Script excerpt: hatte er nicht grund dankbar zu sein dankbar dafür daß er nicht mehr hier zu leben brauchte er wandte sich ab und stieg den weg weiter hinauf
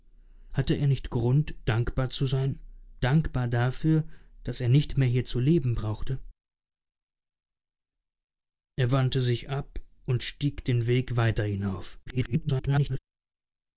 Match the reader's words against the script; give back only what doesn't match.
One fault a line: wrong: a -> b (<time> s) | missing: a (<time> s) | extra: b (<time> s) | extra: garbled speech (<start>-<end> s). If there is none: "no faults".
extra: garbled speech (12.1-13.0 s)